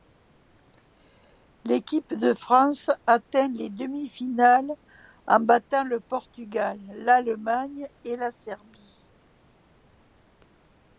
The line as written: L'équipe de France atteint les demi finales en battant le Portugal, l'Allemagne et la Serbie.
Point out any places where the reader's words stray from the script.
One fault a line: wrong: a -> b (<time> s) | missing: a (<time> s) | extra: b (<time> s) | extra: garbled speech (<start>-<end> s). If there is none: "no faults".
no faults